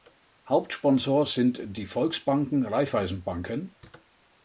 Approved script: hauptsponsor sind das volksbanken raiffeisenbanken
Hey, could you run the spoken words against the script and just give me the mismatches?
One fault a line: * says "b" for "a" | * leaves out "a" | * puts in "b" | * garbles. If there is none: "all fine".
* says "die" for "das"